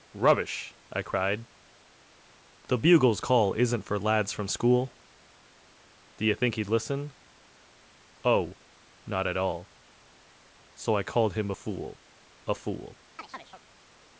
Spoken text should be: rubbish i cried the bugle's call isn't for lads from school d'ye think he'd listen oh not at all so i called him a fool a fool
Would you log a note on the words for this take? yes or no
no